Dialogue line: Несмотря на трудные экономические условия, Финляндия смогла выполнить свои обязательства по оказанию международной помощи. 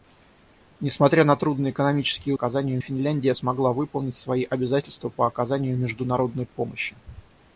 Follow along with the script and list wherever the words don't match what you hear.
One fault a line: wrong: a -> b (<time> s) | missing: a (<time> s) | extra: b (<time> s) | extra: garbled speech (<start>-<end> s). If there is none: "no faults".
wrong: условия -> оказанию (2.3 s)